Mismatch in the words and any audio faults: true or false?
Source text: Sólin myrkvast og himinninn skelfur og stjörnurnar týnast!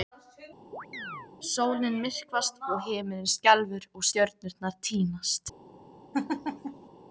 true